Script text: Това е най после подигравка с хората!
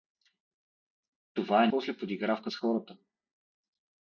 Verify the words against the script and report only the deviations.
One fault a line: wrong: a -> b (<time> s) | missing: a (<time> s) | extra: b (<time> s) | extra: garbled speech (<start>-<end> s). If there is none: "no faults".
missing: най (1.7 s)